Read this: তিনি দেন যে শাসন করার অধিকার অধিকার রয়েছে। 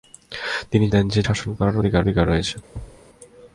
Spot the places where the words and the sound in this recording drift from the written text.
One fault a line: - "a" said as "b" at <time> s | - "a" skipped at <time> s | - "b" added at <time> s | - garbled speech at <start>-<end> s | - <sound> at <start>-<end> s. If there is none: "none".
- thud at 2.7-3.0 s